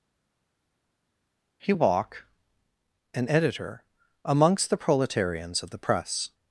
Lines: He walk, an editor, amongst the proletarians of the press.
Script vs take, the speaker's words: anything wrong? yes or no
no